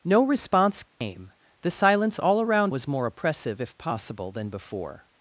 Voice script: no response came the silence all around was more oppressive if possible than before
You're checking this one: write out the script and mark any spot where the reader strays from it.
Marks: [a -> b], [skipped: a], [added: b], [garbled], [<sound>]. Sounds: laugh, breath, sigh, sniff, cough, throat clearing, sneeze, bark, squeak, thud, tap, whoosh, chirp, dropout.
no response came [dropout] the silence all around was more oppressive if possible than before